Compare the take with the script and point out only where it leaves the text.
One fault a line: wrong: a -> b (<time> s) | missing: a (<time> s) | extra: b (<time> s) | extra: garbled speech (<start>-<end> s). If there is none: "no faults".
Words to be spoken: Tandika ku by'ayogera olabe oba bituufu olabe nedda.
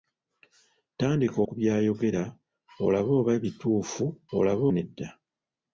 no faults